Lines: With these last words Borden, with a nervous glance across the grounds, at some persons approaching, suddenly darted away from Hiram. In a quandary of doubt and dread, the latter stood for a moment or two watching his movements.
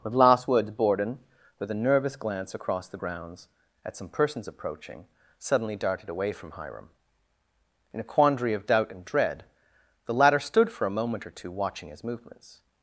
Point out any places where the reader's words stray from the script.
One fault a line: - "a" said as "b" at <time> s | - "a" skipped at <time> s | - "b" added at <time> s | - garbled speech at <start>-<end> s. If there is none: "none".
- "these" skipped at 0.1 s